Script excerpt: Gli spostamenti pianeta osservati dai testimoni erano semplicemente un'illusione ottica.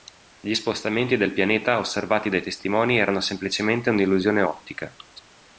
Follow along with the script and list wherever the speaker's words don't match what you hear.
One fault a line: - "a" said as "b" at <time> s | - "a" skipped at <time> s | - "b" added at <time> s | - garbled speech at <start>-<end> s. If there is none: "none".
- "del" added at 1.2 s